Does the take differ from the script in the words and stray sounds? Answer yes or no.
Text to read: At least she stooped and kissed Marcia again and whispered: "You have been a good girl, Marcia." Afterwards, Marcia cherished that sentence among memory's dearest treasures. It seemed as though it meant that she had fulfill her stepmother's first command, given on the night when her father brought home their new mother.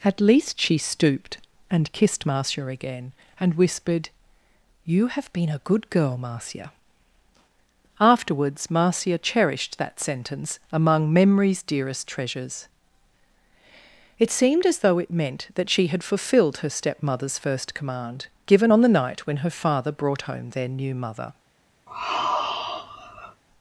yes